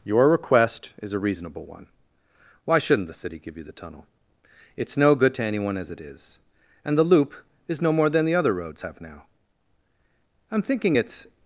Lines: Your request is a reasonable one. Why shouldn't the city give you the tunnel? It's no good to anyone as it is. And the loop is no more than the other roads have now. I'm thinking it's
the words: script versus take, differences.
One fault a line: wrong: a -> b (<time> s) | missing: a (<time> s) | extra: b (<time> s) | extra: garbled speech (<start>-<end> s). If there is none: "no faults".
no faults